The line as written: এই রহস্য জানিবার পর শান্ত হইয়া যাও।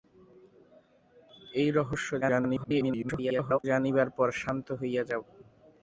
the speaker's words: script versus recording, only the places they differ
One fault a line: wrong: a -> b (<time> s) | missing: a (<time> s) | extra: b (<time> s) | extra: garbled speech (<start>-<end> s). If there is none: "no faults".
extra: garbled speech (2.2-3.6 s)